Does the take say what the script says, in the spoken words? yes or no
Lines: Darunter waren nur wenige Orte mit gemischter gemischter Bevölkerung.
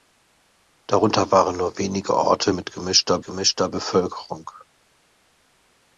yes